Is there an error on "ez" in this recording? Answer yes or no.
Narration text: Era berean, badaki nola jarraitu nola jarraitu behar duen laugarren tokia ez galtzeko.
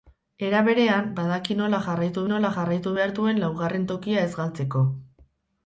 no